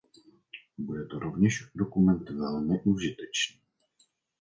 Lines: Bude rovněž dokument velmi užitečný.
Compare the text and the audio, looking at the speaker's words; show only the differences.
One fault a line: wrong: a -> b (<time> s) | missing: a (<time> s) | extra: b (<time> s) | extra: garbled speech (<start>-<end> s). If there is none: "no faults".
extra: to (1.0 s)